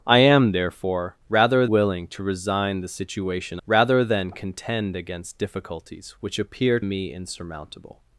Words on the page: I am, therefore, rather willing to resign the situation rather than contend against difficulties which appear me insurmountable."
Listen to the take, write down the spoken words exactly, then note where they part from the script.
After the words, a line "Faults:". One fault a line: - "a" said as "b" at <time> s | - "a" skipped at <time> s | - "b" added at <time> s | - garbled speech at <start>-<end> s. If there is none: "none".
I am, therefore, rather willing to resign the situation rather than contend against difficulties which appear me insurmountable."
Faults:
none